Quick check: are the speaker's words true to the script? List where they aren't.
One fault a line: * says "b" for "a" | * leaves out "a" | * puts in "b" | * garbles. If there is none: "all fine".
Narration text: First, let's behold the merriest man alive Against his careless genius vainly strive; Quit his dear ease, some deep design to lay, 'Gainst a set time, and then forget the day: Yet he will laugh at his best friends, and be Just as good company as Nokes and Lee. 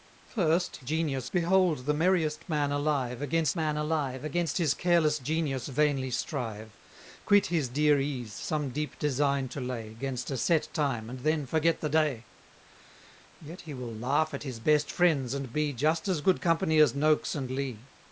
* says "genius" for "let's"
* puts in "man alive Against"